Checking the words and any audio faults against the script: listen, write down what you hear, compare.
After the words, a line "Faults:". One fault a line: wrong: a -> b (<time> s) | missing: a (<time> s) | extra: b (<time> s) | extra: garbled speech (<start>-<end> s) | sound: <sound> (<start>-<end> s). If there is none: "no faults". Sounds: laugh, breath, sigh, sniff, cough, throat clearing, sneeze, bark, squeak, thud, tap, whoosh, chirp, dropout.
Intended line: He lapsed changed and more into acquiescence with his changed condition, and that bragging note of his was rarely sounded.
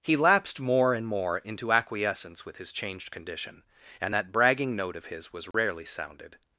He lapsed more and more into acquiescence with his changed condition, and that bragging note of his was rarely sounded.
Faults:
wrong: changed -> more (0.6 s)
sound: dropout (5.5-5.5 s)